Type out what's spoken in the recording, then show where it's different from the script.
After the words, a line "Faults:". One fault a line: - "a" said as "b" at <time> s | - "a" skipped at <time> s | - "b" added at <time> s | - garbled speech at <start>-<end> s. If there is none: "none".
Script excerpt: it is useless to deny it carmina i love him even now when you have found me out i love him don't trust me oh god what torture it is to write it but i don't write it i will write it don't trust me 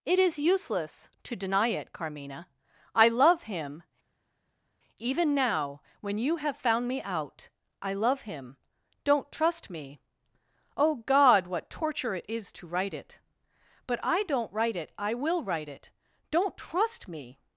it is useless to deny it carmina i love him even now when you have found me out i love him don't trust me oh god what torture it is to write it but i don't write it i will write it don't trust me
Faults:
none